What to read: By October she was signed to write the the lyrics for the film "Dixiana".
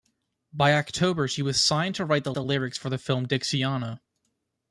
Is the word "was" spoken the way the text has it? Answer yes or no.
yes